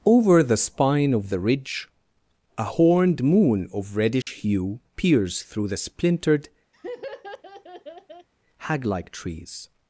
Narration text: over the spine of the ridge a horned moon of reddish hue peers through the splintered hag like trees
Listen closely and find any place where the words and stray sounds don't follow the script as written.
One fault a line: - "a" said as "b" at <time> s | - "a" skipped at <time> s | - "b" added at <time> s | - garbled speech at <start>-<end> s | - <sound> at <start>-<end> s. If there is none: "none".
- dropout at 4.2-4.3 s
- laugh at 6.7-8.3 s